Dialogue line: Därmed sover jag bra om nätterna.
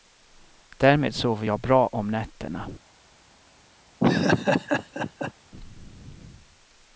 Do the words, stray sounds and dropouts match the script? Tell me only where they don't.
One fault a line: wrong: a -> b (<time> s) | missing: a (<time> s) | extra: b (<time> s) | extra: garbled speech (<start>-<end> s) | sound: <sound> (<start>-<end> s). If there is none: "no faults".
sound: laugh (4.0-5.3 s)